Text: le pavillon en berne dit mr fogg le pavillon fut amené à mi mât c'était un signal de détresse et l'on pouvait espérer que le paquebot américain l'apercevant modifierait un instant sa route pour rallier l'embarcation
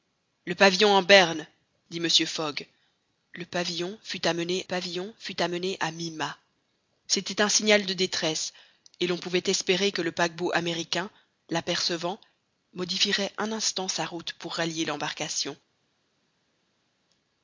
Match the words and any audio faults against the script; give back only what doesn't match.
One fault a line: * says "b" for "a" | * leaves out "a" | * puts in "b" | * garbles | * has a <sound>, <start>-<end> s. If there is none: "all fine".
* puts in "pavillon fut amené"